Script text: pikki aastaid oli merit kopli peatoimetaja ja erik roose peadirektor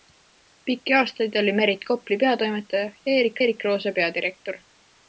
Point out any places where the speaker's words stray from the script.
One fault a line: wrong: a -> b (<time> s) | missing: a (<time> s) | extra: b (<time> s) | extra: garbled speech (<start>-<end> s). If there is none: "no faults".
extra: erik (3.4 s)